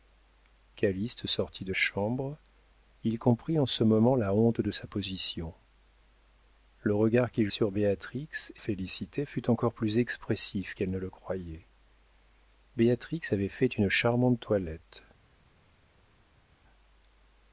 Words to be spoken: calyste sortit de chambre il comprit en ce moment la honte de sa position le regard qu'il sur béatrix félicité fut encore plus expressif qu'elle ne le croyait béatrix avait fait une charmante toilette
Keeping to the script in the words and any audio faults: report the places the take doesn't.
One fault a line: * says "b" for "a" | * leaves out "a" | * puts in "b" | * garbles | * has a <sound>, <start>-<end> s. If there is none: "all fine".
all fine